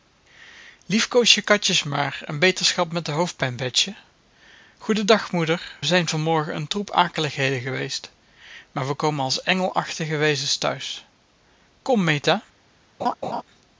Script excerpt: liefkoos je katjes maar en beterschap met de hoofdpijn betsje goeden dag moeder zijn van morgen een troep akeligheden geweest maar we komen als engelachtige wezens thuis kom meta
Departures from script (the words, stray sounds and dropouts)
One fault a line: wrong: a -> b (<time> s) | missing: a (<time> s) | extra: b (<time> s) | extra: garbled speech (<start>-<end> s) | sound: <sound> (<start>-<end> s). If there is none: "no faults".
sound: laugh (13.0-13.4 s)